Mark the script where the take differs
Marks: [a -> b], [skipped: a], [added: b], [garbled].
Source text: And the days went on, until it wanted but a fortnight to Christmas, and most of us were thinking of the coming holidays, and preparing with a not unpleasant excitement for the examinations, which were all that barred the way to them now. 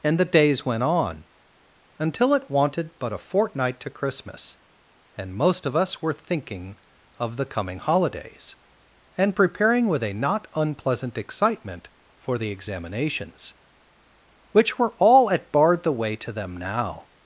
And the days went on, until it wanted but a fortnight to Christmas, and most of us were thinking of the coming holidays, and preparing with a not unpleasant excitement for the examinations, which were all [that -> at] barred the way to them now.